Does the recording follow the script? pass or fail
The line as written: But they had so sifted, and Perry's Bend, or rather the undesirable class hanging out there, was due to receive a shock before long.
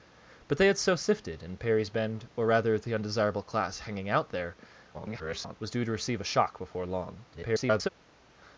fail